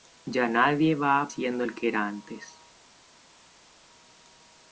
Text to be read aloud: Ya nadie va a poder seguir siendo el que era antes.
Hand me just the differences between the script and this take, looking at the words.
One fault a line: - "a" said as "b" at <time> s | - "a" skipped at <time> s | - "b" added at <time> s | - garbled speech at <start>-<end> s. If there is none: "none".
- "poder seguir" skipped at 1.3 s